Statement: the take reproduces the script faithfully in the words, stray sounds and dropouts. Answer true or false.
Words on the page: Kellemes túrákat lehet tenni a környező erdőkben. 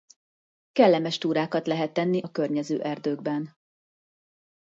true